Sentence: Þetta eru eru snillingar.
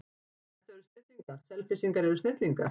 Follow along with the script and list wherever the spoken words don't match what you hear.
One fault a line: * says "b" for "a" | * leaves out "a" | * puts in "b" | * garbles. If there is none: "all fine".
* puts in "snillingar Selfyssingar"